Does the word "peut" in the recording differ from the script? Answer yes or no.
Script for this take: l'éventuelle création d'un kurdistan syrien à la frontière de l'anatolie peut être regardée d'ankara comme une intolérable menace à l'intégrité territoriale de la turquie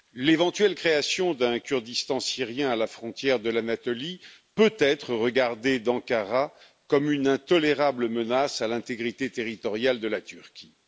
no